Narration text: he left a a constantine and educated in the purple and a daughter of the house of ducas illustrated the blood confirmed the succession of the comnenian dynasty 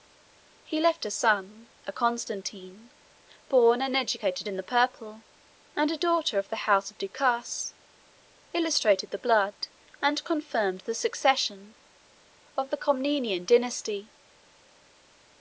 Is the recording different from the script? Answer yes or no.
yes